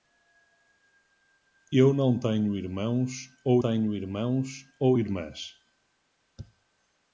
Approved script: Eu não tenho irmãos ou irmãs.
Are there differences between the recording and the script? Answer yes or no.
yes